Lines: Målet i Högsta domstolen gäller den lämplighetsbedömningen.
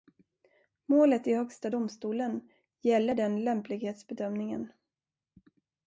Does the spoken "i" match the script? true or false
true